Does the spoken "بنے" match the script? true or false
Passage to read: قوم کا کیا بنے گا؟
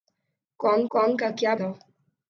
false